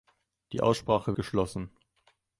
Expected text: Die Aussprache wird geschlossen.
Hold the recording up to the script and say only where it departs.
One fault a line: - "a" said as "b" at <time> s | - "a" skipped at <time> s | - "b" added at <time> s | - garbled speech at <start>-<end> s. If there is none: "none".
- "wird" skipped at 1.1 s